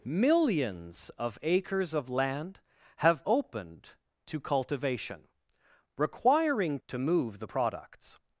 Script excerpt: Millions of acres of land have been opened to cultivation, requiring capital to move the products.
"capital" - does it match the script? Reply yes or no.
no